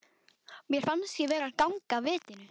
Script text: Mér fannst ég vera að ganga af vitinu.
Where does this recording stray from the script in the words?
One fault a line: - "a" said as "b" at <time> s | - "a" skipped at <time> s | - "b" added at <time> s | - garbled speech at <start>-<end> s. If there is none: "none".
none